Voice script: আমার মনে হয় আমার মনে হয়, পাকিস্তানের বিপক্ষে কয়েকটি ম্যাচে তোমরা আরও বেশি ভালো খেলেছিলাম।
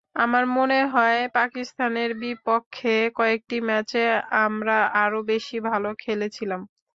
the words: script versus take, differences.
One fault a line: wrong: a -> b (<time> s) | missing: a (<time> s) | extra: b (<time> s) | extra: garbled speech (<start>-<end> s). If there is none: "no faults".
missing: আমার মনে হয় (1.2 s)
wrong: তোমরা -> আমরা (4.5 s)